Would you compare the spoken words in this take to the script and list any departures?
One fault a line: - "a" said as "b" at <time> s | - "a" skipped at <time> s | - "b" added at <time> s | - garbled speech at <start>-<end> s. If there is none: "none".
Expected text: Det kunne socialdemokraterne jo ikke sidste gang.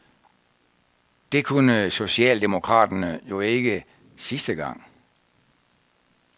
none